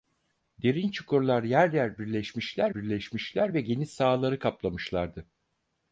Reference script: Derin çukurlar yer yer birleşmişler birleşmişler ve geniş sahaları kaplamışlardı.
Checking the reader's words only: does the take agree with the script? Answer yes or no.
yes